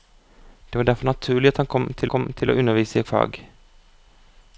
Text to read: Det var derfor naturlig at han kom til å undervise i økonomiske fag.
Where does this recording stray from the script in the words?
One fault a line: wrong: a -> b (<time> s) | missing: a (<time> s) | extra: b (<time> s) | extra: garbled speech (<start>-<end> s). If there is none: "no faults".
extra: kom til (2.1 s)
missing: økonomiske (3.0 s)